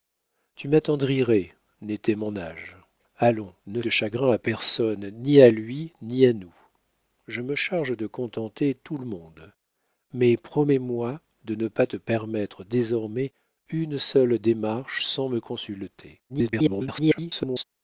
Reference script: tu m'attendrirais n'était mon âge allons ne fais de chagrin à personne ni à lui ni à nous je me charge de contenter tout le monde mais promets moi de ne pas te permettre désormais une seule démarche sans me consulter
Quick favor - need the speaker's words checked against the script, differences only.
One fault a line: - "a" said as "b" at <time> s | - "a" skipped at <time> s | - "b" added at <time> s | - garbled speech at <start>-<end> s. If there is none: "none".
- "fais" skipped at 3.8 s
- garbled speech at 16.3-17.6 s